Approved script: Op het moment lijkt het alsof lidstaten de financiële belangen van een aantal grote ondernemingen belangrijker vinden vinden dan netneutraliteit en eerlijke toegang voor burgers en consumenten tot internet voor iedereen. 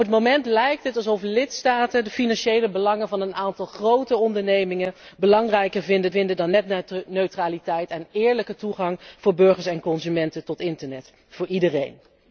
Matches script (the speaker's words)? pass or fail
pass